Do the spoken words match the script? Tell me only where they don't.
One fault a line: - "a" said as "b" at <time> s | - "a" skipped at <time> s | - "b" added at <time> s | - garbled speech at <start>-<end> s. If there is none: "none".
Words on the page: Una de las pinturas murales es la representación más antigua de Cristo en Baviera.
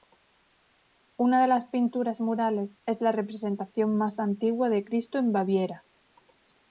none